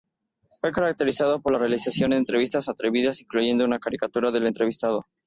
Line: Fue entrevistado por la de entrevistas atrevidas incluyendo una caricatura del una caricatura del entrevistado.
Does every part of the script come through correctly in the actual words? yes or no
no